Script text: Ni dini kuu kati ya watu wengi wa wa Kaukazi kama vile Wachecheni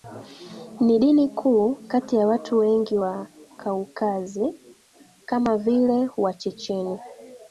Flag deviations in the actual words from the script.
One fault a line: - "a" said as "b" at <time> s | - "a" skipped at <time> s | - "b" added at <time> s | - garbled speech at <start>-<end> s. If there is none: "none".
- "wa" skipped at 3.3 s